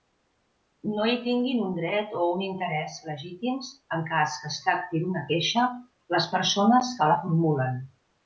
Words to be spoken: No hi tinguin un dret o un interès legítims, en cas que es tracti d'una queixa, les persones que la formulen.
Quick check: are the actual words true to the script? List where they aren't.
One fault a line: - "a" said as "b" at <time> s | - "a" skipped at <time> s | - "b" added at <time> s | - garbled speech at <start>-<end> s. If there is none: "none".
none